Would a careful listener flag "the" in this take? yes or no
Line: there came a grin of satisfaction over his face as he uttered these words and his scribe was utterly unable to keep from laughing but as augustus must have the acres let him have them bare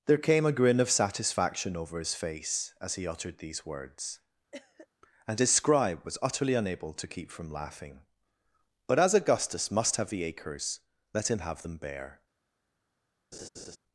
no